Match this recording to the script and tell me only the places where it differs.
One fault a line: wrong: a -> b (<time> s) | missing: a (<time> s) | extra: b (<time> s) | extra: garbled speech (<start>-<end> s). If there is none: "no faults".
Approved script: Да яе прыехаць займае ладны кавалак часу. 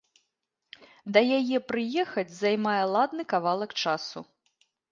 no faults